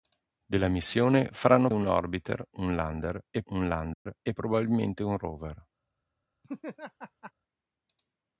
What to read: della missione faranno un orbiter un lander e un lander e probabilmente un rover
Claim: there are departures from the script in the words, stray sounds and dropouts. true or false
true